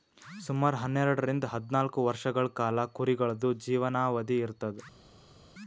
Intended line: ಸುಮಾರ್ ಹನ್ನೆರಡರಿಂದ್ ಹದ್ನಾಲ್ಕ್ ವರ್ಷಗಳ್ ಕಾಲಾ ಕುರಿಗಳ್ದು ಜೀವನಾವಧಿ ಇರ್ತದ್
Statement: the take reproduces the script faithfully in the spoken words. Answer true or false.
true